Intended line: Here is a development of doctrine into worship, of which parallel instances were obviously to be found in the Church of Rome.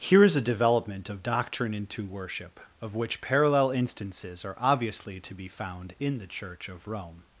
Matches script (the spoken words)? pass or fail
fail